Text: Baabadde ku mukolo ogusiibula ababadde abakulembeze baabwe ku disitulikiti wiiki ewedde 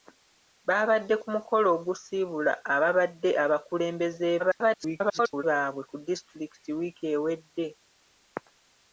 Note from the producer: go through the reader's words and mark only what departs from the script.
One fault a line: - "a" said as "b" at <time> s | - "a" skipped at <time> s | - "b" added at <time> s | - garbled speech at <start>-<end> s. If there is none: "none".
- garbled speech at 4.4-5.4 s